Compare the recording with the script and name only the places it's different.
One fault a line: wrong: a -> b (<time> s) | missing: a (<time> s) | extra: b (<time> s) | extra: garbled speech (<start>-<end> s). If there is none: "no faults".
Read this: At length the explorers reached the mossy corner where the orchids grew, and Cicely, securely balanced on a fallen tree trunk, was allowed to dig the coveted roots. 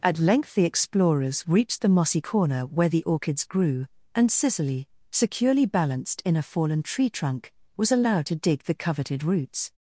wrong: on -> in (6.2 s)